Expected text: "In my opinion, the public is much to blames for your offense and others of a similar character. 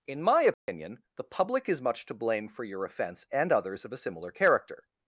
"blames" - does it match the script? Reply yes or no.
no